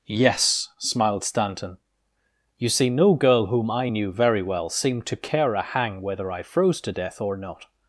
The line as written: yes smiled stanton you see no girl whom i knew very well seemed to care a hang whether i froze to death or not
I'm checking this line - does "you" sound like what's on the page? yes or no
yes